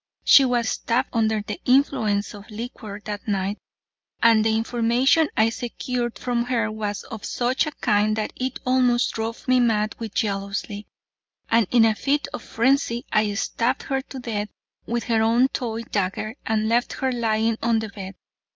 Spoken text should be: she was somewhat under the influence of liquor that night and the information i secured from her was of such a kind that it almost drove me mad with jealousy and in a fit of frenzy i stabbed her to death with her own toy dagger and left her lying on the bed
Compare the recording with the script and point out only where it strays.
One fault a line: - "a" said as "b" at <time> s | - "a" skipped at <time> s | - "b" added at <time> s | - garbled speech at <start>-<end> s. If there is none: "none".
- "somewhat" said as "stabbed" at 0.6 s